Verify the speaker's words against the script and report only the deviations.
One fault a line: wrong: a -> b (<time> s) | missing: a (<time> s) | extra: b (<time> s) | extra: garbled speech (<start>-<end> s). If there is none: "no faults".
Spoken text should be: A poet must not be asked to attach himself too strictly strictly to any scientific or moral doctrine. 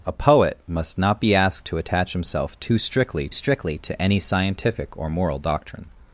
no faults